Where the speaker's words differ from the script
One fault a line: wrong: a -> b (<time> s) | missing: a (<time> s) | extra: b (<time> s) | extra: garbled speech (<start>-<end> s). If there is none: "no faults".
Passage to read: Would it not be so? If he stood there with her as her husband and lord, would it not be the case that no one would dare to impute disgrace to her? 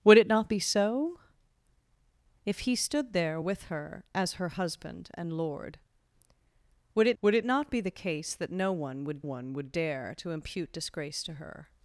extra: would it (7.2 s)
extra: one would (9.2 s)